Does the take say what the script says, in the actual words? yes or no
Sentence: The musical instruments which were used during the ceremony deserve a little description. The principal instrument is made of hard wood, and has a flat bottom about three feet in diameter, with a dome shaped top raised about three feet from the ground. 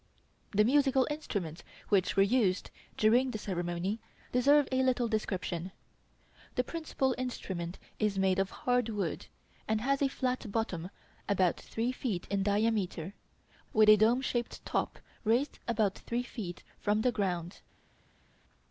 yes